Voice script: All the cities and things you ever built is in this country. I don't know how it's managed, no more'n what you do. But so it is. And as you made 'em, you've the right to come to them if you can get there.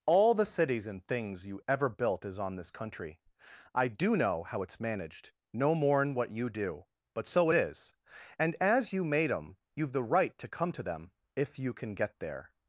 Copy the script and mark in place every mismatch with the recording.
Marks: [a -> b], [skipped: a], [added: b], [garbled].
All the cities and things you ever built is [in -> on] this country. I [don't -> do] know how it's managed, no more'n what you do. But so it is. And as you made 'em, you've the right to come to them if you can get there.